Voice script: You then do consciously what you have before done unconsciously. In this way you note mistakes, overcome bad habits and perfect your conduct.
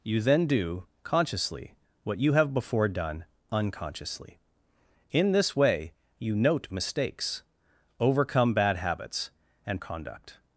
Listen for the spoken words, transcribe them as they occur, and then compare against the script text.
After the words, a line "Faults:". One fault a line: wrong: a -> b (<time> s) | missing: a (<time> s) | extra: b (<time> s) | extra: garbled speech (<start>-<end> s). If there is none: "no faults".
You then do consciously what you have before done unconsciously. In this way you note mistakes, overcome bad habits and conduct.
Faults:
missing: perfect your (9.8 s)